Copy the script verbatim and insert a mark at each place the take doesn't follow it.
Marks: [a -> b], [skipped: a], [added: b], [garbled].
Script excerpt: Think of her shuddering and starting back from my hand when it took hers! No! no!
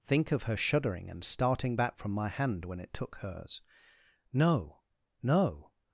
Think of her shuddering and starting back from my hand when it took hers! No! no!